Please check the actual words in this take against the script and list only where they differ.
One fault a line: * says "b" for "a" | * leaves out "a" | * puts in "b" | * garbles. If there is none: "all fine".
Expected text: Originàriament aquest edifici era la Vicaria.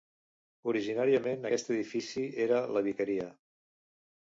all fine